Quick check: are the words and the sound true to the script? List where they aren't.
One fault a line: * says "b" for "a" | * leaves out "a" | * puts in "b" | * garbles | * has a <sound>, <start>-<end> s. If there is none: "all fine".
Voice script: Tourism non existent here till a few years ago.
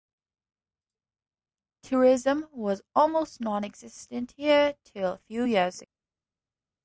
* puts in "was almost"